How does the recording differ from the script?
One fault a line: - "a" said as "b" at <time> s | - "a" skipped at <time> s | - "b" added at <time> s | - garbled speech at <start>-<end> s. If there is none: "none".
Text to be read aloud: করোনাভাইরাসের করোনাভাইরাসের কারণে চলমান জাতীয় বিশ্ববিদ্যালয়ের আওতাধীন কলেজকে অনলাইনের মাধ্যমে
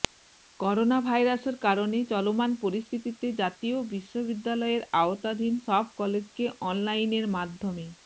- "করোনাভাইরাসের" skipped at 1.6 s
- "পরিস্থিতিতে" added at 2.6 s
- "সব" added at 5.7 s